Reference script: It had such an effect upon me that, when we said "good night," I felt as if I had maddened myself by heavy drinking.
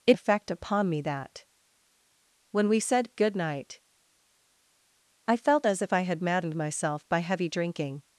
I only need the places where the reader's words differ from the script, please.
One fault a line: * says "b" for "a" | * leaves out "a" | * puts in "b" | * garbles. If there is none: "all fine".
* leaves out "had such an"